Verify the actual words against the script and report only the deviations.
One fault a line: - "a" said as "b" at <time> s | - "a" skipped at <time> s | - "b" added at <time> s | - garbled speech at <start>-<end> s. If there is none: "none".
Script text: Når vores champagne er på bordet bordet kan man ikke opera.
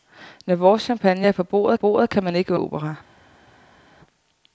none